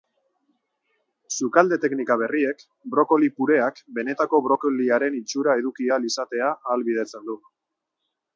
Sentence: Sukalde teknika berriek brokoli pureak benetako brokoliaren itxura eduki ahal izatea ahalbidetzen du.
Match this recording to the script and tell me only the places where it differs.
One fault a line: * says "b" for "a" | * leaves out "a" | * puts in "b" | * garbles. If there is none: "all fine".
all fine